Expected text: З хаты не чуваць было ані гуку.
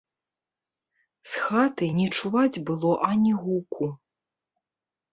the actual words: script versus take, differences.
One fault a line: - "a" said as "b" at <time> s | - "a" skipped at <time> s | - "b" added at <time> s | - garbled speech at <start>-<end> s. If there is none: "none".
none